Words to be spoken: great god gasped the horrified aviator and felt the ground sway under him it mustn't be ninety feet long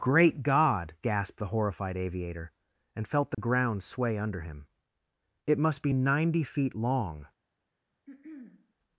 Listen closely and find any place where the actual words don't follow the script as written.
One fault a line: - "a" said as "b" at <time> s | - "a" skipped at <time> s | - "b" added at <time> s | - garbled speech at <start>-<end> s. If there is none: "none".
- "mustn't" said as "must" at 5.6 s